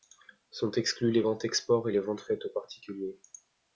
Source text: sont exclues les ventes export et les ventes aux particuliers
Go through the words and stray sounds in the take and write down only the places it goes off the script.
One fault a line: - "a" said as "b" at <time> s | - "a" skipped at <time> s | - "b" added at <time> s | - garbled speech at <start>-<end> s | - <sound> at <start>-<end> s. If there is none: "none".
- "faites" added at 2.2 s